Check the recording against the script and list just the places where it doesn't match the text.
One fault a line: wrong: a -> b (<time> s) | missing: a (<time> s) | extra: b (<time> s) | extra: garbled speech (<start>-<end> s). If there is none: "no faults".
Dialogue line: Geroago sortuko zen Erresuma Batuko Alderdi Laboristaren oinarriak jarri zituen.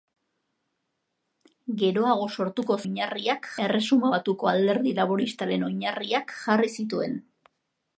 wrong: zen -> oinarriak (2.8 s)